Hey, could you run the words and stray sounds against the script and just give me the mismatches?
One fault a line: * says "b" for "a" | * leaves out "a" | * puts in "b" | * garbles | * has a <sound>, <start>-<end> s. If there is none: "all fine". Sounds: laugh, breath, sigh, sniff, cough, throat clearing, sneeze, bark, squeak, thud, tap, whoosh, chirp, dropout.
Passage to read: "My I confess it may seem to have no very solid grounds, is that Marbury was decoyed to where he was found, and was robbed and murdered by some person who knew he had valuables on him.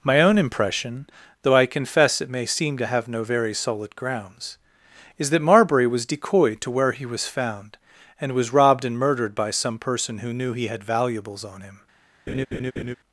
* puts in "own impression though"
* has a laugh, 12.3-13.0 s